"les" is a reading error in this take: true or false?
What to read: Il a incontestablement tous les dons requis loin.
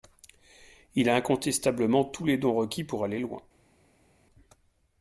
false